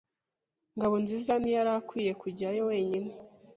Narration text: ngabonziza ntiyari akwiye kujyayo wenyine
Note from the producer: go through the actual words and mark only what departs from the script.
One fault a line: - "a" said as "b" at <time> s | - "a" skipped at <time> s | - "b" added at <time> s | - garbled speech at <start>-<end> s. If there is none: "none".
none